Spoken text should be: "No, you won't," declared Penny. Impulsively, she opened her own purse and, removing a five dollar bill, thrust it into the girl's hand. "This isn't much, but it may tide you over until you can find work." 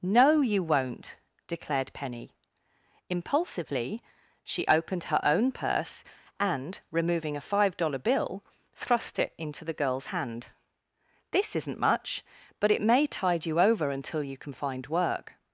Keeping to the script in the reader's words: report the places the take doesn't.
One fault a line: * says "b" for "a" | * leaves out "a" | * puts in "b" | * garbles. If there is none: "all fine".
all fine